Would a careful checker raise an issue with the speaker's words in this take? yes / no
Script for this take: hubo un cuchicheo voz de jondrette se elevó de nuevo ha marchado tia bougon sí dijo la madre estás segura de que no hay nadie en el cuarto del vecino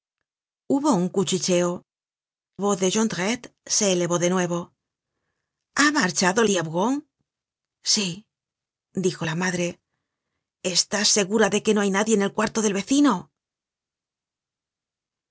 no